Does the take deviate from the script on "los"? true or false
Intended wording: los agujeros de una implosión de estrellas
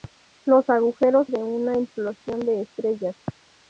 false